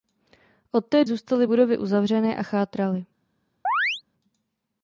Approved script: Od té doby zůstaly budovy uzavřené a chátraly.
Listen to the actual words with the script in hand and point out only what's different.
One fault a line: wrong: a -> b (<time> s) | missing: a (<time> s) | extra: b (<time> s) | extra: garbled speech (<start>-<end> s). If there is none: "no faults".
missing: doby (1.1 s)